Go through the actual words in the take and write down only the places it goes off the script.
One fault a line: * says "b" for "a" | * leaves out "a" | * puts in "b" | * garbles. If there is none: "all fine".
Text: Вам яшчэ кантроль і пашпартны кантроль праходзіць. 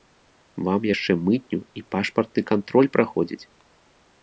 * says "мытню" for "кантроль"